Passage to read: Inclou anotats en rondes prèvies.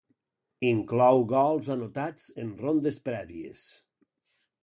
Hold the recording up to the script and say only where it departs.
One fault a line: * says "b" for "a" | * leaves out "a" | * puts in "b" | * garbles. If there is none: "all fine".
* puts in "gols"